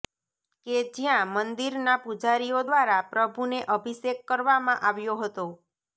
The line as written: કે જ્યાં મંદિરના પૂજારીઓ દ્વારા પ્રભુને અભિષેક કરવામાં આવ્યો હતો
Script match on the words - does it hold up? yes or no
yes